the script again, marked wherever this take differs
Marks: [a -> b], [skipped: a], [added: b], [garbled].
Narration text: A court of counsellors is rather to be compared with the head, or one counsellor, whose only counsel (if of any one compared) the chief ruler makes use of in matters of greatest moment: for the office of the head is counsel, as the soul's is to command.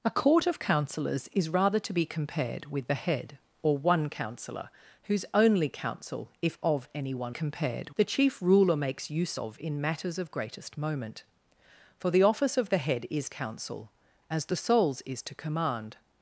A court of counsellors is rather to be compared with the head, or one counsellor, whose only counsel (if of any one compared) the chief ruler makes use of in matters of greatest moment: for the office of the head is counsel, as the soul's is to command.